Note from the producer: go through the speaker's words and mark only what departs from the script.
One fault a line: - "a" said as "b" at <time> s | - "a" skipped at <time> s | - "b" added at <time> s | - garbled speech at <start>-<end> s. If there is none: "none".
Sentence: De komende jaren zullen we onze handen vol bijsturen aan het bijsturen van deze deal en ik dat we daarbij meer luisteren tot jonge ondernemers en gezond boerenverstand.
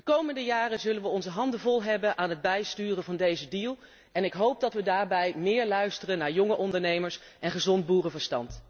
- "bijsturen" said as "hebben" at 1.8 s
- "hoop" added at 4.3 s
- "tot" said as "naar" at 6.2 s